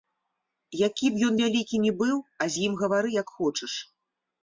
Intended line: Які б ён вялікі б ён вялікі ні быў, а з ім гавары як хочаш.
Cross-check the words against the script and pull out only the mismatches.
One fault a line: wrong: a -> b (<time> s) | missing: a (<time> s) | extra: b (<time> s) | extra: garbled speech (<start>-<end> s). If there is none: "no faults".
missing: б ён вялікі (1.8 s)